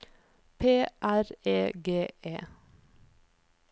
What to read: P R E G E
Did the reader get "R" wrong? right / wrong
right